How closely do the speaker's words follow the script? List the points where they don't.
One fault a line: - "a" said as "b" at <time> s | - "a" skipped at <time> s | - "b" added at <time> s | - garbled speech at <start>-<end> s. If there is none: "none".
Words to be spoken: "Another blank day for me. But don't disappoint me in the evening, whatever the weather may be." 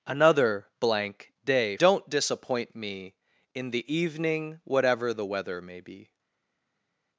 - "for me But" skipped at 1.8 s